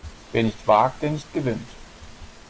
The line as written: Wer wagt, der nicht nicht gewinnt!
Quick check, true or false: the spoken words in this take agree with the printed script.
false